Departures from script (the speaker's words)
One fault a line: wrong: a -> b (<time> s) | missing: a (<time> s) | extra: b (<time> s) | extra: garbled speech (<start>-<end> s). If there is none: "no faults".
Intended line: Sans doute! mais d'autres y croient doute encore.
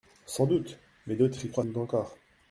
no faults